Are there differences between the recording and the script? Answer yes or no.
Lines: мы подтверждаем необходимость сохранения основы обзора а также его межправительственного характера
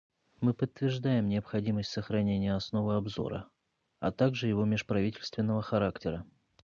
no